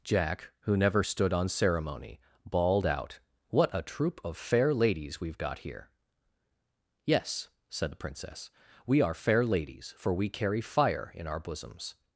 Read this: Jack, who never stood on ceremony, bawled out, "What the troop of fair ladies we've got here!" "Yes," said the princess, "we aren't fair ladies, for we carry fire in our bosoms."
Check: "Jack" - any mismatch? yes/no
no